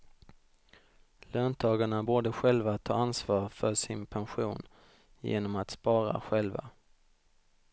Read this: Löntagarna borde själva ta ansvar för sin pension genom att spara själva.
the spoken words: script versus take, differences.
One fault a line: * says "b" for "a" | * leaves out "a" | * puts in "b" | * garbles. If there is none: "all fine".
all fine